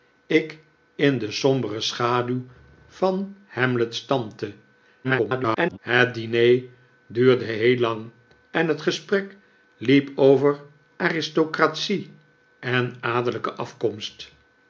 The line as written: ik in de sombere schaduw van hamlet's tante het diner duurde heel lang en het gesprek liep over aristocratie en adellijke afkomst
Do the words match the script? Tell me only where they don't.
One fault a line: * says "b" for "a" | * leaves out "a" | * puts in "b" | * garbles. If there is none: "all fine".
* garbles